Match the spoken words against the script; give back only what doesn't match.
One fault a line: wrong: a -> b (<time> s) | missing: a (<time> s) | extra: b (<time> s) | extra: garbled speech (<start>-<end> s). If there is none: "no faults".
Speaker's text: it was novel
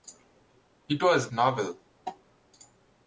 no faults